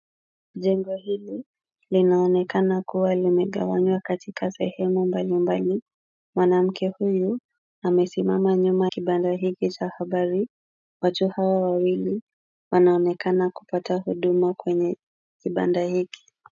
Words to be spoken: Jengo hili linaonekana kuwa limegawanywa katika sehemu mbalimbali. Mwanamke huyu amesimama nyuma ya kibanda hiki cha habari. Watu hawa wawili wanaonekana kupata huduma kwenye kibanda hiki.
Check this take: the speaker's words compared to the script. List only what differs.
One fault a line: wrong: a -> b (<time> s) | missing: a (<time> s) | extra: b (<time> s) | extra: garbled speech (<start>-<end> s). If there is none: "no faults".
missing: ya (8.9 s)